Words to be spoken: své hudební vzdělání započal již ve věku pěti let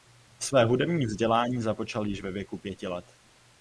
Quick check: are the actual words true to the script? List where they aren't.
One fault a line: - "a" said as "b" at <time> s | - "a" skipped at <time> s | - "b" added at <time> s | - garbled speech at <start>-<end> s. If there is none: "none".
none